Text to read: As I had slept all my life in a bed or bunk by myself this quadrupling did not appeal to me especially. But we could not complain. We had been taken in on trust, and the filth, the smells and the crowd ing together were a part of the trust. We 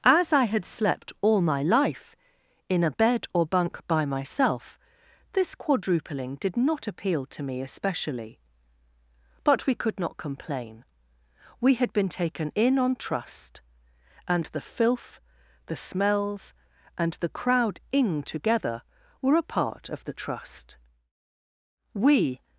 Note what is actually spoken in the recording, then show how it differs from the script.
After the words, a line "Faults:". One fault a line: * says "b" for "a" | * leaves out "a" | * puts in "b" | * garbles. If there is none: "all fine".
As I had slept all my life in a bed or bunk by myself this quadrupling did not appeal to me especially. But we could not complain. We had been taken in on trust, and the filth, the smells and the crowd ing together were a part of the trust. We
Faults:
all fine